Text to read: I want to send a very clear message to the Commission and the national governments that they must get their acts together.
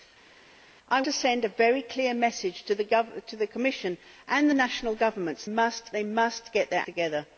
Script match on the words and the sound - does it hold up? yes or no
no